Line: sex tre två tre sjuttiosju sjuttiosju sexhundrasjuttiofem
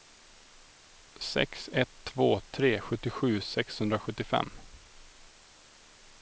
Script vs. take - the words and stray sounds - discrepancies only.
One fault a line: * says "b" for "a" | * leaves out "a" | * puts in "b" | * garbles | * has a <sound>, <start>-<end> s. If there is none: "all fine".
* says "ett" for "tre"
* leaves out "sjuttiosju"